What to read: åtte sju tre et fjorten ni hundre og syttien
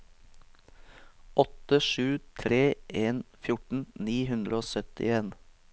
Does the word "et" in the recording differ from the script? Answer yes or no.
yes